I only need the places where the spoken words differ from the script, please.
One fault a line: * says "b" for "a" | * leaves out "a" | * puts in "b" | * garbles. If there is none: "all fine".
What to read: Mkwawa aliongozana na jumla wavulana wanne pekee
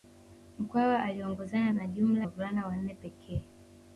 all fine